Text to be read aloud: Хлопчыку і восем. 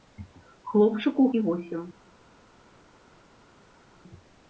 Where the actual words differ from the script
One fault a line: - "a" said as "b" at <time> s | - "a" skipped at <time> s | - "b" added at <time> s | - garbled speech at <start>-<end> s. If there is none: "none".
none